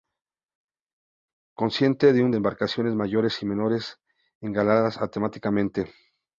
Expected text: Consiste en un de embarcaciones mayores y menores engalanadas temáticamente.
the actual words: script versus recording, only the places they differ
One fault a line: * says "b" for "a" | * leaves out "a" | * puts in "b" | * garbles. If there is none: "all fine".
all fine